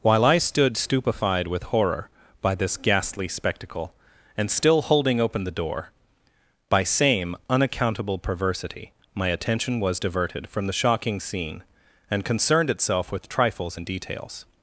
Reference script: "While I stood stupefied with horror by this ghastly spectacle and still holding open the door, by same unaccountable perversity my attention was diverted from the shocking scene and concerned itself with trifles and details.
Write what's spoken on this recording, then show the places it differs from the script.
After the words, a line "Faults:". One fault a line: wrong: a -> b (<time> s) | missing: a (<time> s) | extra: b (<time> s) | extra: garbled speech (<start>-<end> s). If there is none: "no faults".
"While I stood stupefied with horror by this ghastly spectacle and still holding open the door, by same unaccountable perversity my attention was diverted from the shocking scene and concerned itself with trifles and details.
Faults:
no faults